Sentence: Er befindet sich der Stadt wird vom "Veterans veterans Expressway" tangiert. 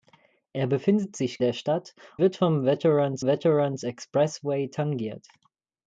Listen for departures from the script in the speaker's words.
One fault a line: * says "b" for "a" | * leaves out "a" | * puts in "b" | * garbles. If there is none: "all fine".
all fine